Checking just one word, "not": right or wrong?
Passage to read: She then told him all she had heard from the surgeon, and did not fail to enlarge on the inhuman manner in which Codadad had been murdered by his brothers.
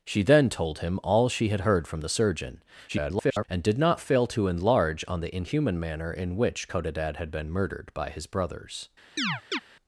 right